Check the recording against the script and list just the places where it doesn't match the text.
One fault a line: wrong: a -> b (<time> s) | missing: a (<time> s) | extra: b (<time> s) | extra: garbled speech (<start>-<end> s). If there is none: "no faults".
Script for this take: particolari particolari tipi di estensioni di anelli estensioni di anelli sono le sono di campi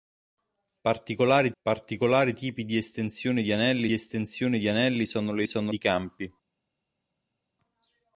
no faults